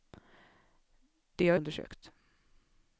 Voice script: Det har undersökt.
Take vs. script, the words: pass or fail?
pass